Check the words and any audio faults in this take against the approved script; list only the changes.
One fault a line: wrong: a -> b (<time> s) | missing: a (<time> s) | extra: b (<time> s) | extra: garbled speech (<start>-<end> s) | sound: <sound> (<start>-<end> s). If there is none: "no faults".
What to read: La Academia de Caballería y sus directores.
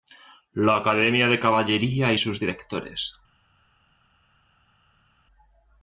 no faults